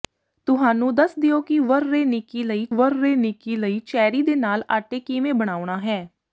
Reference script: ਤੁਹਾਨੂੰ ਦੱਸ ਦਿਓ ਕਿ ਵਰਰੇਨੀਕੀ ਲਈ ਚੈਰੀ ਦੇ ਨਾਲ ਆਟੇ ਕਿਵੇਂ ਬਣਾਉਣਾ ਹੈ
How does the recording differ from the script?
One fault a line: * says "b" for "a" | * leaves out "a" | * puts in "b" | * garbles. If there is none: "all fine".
* puts in "ਵਰਰੇਨੀਕੀ ਲਈ"